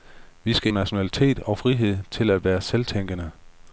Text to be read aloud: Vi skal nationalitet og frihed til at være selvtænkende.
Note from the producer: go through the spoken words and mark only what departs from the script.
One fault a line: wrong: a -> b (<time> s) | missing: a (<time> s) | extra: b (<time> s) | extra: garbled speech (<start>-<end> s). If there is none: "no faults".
no faults